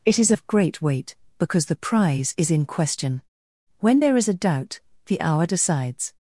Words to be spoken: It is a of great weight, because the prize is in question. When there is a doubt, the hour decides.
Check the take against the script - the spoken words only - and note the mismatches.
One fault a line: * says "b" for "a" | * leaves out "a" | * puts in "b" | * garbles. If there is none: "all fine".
all fine